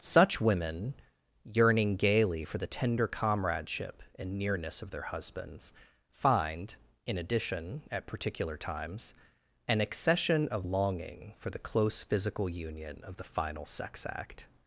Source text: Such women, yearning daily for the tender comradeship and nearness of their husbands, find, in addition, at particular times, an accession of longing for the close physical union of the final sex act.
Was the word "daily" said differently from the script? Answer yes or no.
yes